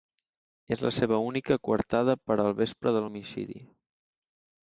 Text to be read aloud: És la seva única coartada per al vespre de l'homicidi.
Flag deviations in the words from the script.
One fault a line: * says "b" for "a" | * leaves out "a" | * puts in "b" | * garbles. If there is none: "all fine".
all fine